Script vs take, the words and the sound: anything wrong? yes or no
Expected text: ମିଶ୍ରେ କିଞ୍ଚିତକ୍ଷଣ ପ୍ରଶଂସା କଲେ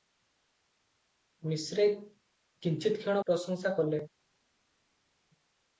no